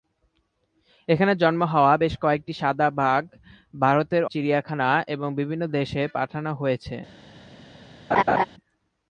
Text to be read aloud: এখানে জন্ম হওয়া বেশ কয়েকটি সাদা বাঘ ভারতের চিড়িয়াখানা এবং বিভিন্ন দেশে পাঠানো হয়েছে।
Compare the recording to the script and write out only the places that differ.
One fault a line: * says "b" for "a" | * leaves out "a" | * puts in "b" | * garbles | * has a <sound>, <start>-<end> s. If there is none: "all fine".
* has a laugh, 8.1-8.4 s